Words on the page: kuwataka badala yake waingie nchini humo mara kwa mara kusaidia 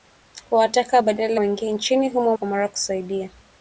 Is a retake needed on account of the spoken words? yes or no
yes